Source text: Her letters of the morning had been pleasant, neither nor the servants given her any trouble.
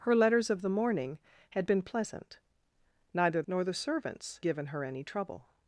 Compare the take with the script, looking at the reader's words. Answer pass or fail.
pass